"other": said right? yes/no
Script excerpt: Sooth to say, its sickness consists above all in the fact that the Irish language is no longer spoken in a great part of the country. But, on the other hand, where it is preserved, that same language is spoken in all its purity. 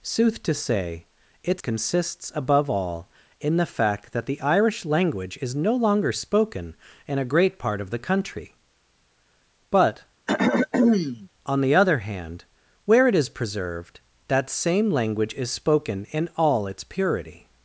yes